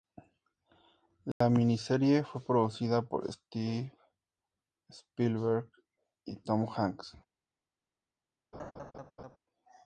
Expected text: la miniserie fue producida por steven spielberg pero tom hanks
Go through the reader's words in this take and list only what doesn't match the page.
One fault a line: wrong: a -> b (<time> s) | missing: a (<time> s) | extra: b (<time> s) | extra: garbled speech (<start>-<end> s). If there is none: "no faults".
wrong: pero -> y (6.2 s)